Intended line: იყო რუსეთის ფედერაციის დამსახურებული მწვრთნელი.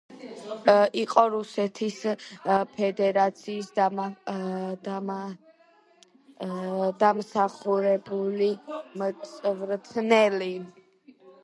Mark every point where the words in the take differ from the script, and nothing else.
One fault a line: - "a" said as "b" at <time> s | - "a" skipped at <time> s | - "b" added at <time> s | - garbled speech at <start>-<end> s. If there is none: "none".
none